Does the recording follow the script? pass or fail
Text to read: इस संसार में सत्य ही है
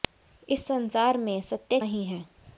pass